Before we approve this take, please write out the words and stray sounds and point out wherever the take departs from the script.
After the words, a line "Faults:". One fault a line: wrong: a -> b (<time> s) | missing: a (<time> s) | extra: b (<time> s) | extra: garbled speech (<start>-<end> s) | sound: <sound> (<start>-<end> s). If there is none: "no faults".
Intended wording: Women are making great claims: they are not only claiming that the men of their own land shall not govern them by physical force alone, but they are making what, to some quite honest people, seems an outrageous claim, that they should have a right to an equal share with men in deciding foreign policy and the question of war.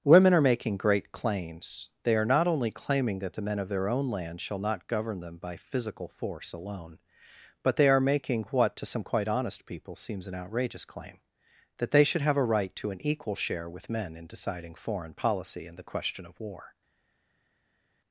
Women are making great claims: they are not only claiming that the men of their own land shall not govern them by physical force alone, but they are making what, to some quite honest people, seems an outrageous claim, that they should have a right to an equal share with men in deciding foreign policy and the question of war.
Faults:
no faults